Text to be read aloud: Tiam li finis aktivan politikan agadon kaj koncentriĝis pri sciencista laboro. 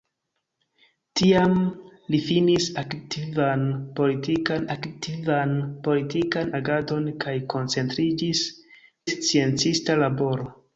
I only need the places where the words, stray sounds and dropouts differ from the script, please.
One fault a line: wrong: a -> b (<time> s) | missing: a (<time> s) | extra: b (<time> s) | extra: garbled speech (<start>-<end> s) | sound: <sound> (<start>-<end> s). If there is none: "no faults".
extra: aktivan politikan (4.8 s)
missing: pri (8.5 s)